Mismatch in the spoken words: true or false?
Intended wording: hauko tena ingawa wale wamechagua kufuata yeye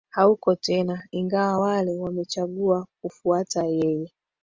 false